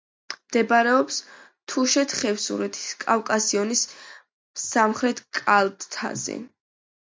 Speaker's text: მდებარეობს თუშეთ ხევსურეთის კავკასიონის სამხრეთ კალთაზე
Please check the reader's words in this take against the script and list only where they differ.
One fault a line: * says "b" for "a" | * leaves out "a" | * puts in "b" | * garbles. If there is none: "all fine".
all fine